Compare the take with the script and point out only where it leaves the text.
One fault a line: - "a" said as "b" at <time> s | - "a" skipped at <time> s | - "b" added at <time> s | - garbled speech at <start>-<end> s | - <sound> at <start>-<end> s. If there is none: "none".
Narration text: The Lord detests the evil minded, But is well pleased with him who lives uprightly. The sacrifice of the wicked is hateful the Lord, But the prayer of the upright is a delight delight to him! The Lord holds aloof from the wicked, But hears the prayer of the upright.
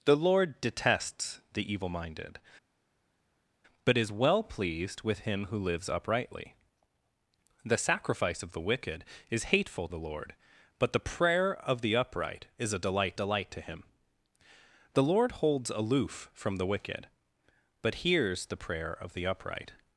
none